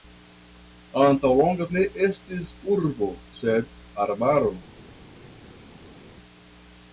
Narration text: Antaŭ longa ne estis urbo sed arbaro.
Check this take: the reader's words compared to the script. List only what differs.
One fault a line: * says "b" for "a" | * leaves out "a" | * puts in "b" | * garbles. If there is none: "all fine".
all fine